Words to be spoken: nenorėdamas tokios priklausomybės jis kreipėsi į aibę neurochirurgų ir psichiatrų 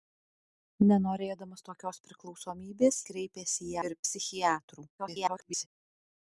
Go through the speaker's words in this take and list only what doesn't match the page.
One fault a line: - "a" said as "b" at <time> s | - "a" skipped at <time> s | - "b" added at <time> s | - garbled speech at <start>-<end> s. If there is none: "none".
- "jis" skipped at 3.0 s
- "aibę neurochirurgų" skipped at 3.8 s
- garbled speech at 5.0-5.7 s